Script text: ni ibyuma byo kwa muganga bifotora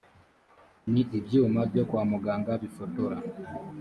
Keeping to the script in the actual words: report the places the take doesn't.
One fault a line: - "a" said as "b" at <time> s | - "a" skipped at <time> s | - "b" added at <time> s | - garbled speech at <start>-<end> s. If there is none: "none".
none